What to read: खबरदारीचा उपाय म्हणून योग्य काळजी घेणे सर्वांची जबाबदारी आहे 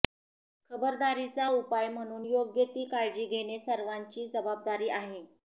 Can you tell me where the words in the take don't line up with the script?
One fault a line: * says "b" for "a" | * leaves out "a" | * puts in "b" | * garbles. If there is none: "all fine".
* puts in "ती"